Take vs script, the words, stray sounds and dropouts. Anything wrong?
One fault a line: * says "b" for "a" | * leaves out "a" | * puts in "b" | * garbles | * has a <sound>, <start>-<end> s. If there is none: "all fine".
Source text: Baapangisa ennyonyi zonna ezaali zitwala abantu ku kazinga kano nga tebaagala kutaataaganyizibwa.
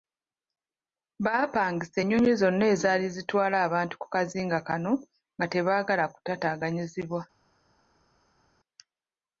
all fine